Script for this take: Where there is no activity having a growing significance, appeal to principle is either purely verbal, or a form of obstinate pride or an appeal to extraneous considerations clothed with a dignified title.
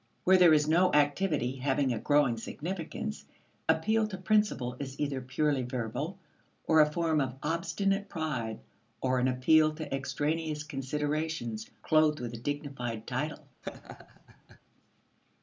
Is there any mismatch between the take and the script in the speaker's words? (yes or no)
no